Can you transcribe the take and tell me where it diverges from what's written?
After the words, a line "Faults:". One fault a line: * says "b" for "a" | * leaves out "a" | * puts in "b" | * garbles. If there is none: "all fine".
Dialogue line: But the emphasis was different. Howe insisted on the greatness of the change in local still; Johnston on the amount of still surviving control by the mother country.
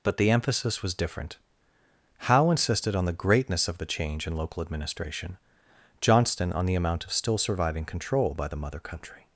But the emphasis was different. Howe insisted on the greatness of the change in local administration; Johnston on the amount of still surviving control by the mother country.
Faults:
* says "administration" for "still"